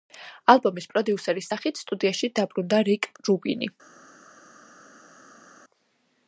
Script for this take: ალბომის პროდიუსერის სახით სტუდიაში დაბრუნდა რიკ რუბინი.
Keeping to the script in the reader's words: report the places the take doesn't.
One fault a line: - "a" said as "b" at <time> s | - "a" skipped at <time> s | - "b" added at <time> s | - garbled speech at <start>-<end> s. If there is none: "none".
none